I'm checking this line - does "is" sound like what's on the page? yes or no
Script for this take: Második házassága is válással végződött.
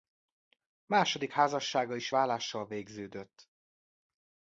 yes